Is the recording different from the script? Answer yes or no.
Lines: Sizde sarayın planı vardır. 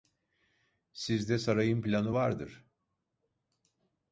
no